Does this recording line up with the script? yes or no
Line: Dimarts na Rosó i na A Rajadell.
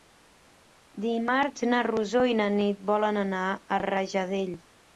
no